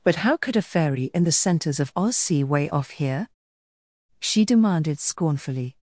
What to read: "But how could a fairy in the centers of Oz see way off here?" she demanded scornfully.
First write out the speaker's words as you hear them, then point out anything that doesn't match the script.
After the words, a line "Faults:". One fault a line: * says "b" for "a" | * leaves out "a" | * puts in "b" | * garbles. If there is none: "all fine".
"But how could a fairy in the centers of Oz see way off here?" she demanded scornfully.
Faults:
all fine